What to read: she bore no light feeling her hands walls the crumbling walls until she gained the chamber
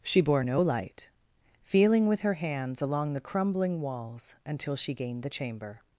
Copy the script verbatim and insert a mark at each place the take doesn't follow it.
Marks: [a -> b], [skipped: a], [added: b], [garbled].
she bore no light feeling [added: with] her hands [walls -> along] the crumbling walls until she gained the chamber